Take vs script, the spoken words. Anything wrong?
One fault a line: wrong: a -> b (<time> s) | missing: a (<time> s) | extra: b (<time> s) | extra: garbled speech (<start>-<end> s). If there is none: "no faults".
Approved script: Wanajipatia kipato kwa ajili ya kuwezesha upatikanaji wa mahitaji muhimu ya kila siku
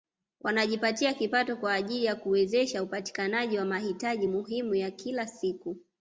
no faults